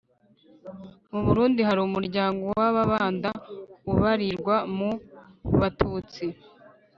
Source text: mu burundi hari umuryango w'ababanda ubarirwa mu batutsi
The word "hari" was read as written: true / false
true